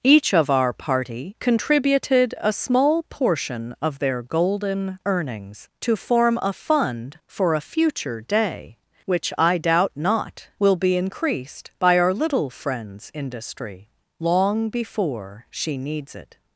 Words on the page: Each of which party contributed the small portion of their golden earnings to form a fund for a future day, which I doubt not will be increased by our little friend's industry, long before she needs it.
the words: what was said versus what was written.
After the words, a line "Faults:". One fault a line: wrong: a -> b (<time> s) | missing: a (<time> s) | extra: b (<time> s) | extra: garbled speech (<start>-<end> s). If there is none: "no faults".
Each of our party contributed a small portion of their golden earnings to form a fund for a future day, which I doubt not will be increased by our little friend's industry, long before she needs it.
Faults:
wrong: which -> our (0.5 s)
wrong: the -> a (2.4 s)